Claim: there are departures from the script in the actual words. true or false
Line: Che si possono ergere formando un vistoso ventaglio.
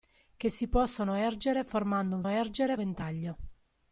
true